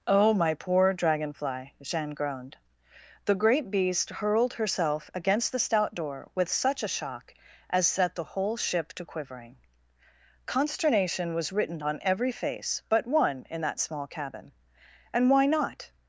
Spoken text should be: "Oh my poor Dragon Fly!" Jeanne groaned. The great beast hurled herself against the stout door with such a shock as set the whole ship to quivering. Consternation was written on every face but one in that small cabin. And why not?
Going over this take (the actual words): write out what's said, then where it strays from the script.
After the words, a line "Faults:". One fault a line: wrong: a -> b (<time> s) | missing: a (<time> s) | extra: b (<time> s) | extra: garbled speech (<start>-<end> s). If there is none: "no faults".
"Oh my poor Dragon Fly!" Jeanne groaned. The great beast hurled herself against the stout door with such a shock as set the whole ship to quivering. Consternation was written on every face but one in that small cabin. And why not?
Faults:
no faults